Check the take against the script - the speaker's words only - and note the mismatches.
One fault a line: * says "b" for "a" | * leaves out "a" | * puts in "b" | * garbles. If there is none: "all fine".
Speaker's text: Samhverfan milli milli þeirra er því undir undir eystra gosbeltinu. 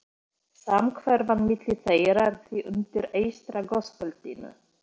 * leaves out "milli"
* leaves out "undir"